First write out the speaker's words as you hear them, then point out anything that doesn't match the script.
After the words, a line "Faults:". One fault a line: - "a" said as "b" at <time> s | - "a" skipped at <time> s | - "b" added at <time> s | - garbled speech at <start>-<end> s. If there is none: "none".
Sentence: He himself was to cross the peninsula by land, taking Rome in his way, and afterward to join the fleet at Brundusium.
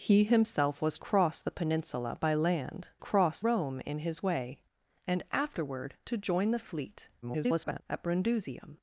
He himself was cross the peninsula by land, cross Rome in his way, and afterward to join the fleet [garbled] at Brundusium.
Faults:
- "to" skipped at 1.0 s
- "taking" said as "cross" at 3.0 s
- garbled speech at 7.2-7.8 s